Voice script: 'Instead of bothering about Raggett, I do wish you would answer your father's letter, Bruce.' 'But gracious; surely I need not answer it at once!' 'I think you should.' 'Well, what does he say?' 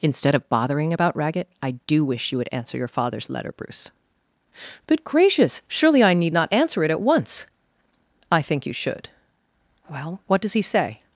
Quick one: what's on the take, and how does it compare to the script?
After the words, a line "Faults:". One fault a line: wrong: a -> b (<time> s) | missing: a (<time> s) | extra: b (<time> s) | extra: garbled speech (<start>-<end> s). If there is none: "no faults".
'Instead of bothering about Raggett, I do wish you would answer your father's letter, Bruce.' 'But gracious; surely I need not answer it at once!' 'I think you should.' 'Well, what does he say?'
Faults:
no faults